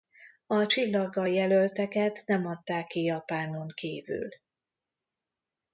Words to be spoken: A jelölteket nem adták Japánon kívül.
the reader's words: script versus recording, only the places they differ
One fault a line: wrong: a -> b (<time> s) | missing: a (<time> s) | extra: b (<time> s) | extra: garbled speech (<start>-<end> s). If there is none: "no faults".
extra: csillaggal (0.6 s)
extra: ki (2.9 s)